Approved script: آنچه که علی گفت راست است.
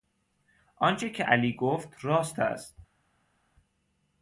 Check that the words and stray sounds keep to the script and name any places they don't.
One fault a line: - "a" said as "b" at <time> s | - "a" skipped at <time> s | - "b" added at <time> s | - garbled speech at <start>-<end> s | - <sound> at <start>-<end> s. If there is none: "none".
none